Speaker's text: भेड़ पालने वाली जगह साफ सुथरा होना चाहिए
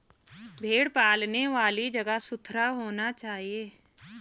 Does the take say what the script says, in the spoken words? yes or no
no